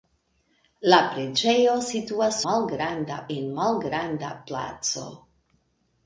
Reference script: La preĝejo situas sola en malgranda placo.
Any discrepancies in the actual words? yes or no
yes